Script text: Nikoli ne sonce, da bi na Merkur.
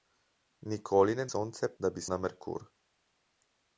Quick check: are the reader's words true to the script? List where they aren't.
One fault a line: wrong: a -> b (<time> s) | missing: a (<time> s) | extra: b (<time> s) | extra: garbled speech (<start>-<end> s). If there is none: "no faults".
no faults